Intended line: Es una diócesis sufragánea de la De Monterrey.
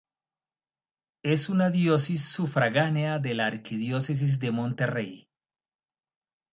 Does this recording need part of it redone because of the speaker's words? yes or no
yes